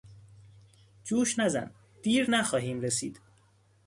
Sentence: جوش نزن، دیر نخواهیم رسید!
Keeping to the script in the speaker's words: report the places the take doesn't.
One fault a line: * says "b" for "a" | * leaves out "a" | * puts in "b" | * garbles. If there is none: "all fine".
all fine